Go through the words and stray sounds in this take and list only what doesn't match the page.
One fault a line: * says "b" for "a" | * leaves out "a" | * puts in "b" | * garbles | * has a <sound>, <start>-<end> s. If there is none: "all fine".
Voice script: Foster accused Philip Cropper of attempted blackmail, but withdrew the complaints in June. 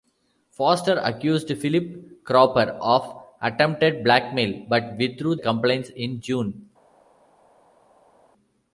* leaves out "the"